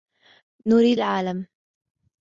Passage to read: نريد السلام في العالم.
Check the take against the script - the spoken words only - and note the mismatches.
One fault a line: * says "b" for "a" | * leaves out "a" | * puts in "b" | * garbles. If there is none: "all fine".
* leaves out "السلام في"